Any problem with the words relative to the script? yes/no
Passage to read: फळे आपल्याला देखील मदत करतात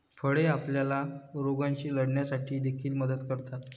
yes